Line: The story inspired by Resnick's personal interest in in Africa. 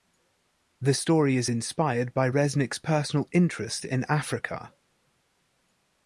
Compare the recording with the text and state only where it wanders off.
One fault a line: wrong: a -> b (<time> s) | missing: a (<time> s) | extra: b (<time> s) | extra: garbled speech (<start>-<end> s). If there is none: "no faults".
extra: is (1.4 s)
missing: in (4.0 s)